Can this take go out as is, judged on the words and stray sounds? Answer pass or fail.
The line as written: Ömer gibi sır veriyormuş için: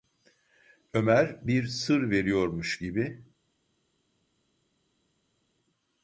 fail